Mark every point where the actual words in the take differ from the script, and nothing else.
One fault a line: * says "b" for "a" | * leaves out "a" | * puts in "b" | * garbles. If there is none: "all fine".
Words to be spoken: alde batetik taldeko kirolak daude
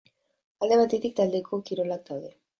all fine